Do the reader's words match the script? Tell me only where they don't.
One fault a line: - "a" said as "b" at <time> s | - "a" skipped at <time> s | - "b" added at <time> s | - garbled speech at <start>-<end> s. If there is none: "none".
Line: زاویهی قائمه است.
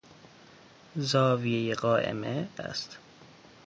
none